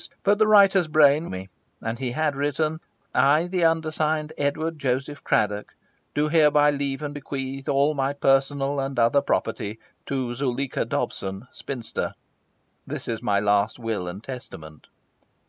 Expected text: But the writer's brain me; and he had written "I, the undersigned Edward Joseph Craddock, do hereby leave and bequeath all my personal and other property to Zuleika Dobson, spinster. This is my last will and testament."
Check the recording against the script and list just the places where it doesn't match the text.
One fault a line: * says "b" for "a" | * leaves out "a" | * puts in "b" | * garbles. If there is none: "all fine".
all fine